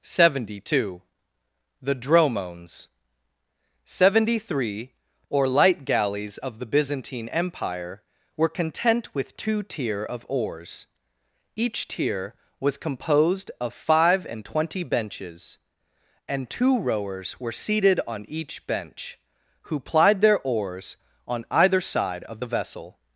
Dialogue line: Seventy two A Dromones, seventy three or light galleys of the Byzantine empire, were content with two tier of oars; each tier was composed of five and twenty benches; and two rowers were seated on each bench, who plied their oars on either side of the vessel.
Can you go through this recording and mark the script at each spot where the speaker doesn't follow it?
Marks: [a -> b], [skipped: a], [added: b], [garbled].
Seventy two [A -> The] Dromones, seventy three or light galleys of the Byzantine empire, were content with two tier of oars; each tier was composed of five and twenty benches; and two rowers were seated on each bench, who plied their oars on either side of the vessel.